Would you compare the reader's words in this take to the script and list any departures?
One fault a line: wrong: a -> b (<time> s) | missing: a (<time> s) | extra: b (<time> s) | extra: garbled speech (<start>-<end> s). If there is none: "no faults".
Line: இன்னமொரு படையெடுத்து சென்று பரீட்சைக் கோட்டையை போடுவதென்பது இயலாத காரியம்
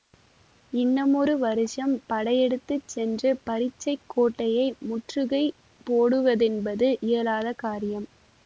extra: வருஷம் (1.4 s)
extra: முற்றுகை (4.9 s)